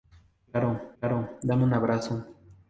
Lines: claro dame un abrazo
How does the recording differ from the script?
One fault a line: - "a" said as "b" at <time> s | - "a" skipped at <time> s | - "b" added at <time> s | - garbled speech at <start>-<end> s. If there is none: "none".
- "claro" added at 1.0 s